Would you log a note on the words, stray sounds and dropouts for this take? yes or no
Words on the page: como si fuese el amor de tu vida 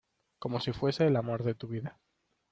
no